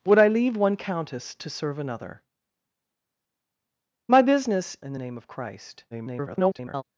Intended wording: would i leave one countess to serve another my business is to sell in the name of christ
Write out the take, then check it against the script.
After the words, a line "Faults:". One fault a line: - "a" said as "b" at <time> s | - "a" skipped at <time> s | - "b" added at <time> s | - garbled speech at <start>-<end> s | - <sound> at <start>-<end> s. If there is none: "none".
would i leave one countess to serve another my business in the name of christ [garbled]
Faults:
- "is to sell" skipped at 4.8 s
- garbled speech at 5.9-6.8 s